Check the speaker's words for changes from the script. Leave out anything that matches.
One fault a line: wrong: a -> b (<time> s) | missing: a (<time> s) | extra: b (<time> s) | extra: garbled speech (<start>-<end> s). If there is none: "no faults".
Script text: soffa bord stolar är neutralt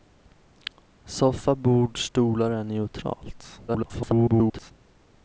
extra: garbled speech (3.7-4.7 s)